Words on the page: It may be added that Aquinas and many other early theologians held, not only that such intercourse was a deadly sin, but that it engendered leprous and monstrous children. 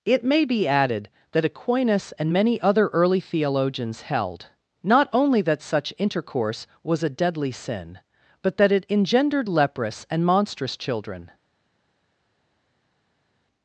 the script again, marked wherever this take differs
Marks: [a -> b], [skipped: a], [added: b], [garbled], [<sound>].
It may be added that Aquinas and many other early theologians held, not only that such intercourse was a deadly sin, but that it engendered leprous and monstrous children.